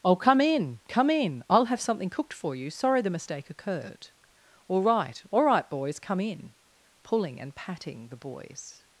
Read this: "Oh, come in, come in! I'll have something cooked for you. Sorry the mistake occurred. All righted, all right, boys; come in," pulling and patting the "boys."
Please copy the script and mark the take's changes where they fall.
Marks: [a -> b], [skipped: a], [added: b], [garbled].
"Oh, come in, come in! I'll have something cooked for you. Sorry the mistake occurred. All [righted, -> right] all right, boys; come in," pulling and patting the "boys."